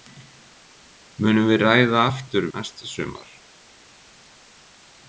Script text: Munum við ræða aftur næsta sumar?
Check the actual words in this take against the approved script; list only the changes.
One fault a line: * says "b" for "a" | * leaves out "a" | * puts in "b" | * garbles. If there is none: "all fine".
all fine